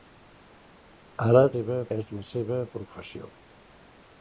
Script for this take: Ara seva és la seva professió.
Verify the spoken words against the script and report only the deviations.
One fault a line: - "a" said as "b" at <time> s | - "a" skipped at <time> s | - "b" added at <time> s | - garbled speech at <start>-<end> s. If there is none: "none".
none